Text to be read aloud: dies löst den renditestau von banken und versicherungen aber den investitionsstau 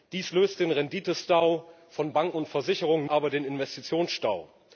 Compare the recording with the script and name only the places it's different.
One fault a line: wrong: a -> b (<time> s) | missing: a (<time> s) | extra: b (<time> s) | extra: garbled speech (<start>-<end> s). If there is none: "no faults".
no faults